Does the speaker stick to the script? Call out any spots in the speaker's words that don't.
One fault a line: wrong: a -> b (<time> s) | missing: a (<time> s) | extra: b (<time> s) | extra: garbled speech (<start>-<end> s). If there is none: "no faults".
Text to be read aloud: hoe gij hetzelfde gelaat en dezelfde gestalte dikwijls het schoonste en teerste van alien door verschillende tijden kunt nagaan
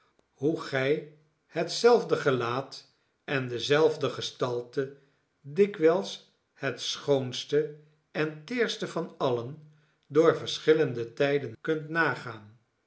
no faults